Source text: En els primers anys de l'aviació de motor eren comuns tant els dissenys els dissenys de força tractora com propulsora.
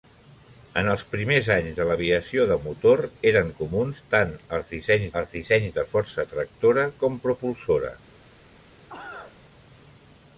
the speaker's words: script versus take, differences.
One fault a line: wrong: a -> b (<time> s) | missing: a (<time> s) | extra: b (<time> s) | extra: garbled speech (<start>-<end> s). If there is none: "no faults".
no faults